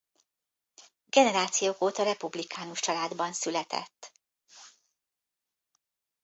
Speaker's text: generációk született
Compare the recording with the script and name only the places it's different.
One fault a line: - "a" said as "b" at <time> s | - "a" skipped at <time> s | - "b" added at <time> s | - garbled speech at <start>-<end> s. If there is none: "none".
- "óta republikánus családban" added at 1.8 s